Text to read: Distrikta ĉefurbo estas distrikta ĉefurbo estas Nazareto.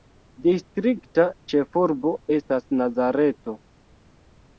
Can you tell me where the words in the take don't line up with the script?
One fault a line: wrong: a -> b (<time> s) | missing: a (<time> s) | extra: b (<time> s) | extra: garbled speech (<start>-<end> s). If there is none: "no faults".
missing: distrikta ĉefurbo estas (2.7 s)